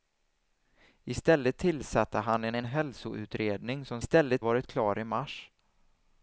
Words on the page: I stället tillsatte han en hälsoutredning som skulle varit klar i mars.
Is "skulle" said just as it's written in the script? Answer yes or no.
no